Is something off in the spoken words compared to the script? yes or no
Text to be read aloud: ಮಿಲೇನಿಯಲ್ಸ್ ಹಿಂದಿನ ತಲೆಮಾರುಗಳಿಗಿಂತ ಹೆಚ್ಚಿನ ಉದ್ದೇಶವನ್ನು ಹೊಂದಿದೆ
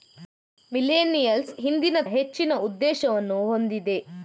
yes